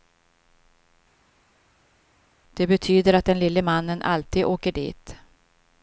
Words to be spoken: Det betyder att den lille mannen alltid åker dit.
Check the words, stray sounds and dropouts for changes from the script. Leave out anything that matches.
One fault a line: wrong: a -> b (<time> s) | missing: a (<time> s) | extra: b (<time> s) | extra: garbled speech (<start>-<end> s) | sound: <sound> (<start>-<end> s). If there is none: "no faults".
no faults